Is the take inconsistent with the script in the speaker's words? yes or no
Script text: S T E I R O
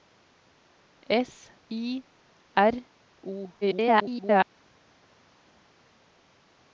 yes